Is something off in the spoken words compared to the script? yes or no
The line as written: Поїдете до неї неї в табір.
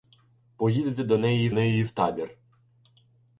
no